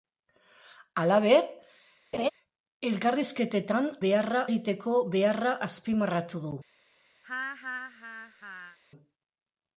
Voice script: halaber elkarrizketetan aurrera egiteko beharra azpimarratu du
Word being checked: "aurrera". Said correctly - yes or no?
no